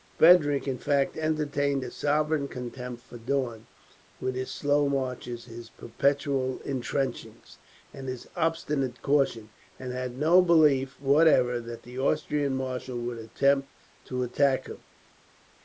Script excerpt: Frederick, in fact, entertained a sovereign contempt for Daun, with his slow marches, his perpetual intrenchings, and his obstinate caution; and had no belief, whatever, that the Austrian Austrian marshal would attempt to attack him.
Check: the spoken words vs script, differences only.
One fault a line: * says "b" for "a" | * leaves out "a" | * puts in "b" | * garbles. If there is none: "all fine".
* leaves out "Austrian"